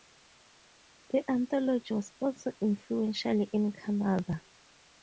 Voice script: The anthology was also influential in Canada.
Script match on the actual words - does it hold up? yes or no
yes